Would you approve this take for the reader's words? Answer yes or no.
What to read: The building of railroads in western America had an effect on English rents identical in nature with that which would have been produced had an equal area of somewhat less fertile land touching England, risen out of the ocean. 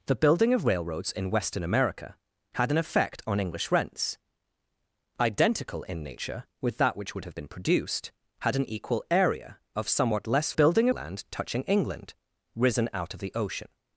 no